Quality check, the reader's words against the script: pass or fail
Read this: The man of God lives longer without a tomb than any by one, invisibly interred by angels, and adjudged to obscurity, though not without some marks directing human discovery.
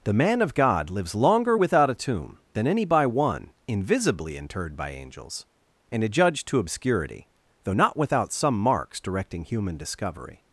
pass